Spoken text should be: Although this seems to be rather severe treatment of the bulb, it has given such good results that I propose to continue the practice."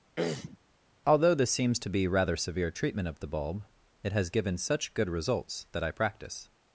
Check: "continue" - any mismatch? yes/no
yes